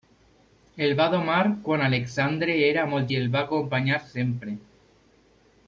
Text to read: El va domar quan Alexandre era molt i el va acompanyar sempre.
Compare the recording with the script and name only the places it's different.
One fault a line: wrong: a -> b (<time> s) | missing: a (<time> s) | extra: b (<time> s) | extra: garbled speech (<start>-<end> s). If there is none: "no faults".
no faults